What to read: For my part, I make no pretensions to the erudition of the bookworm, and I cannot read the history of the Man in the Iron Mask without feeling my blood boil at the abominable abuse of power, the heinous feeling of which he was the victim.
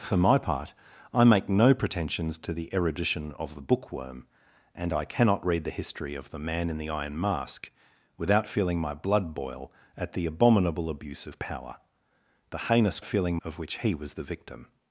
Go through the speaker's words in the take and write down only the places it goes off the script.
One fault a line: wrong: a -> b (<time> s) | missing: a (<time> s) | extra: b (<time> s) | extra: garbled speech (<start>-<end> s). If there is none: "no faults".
no faults